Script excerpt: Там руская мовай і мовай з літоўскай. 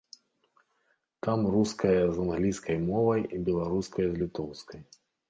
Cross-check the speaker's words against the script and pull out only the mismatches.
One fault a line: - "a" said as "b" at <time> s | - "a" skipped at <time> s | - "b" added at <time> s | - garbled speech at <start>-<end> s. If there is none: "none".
- "з англійскай" added at 2.1 s
- "мовай" said as "беларуская" at 3.5 s